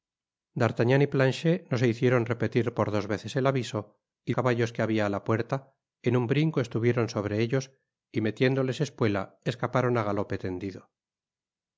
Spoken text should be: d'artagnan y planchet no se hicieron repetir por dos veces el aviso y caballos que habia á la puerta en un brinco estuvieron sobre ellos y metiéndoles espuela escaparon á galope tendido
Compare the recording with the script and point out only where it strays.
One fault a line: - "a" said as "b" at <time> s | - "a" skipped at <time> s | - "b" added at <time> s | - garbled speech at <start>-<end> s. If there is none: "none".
none